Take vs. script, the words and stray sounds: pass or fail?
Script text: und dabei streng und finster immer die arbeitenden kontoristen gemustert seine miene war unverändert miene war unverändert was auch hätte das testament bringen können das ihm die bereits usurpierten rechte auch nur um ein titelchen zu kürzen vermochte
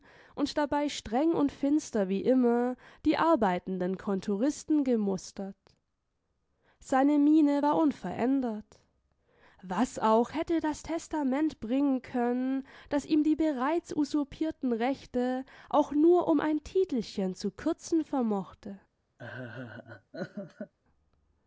fail